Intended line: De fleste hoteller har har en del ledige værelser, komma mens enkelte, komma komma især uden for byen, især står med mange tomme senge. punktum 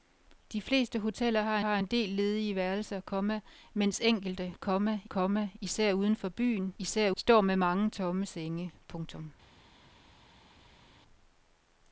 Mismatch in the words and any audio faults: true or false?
false